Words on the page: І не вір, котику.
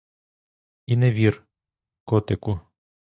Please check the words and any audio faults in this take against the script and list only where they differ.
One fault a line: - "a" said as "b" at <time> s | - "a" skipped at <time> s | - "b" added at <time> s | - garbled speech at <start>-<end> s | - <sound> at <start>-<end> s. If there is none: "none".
none